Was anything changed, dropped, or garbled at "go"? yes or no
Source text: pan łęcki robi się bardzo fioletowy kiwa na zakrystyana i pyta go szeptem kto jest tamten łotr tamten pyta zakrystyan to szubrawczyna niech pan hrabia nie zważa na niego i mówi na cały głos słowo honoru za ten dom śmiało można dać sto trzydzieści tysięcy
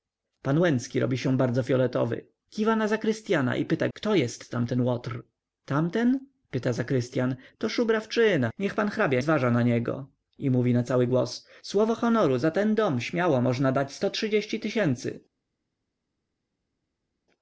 yes